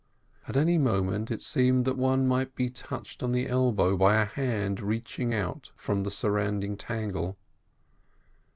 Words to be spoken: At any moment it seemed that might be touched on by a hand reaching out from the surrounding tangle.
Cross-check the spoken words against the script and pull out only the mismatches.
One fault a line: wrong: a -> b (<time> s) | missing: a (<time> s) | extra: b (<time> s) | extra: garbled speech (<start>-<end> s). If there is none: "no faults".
extra: one (1.9 s)
extra: the elbow (3.3 s)